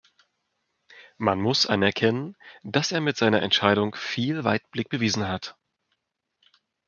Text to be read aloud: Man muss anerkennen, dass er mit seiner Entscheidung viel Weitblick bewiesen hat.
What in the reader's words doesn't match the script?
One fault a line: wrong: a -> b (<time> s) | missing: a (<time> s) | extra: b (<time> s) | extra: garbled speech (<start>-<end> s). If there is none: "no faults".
no faults